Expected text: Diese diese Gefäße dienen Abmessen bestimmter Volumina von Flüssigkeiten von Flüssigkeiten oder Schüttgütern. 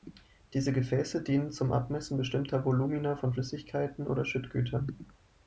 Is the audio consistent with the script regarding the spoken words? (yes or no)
no